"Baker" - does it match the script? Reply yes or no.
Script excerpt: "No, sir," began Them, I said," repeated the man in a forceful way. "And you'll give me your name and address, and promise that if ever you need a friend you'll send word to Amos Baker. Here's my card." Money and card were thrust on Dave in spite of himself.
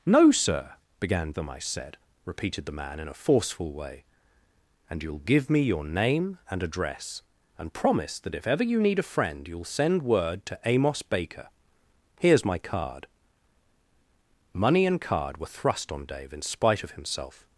yes